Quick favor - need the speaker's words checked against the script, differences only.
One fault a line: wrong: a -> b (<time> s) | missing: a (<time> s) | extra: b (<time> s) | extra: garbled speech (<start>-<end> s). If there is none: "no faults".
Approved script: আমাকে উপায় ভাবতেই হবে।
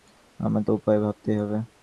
no faults